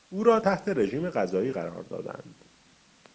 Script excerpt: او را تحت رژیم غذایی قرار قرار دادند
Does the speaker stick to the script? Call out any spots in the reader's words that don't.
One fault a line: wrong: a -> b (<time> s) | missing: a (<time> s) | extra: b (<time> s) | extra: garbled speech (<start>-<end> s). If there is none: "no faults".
missing: قرار (1.8 s)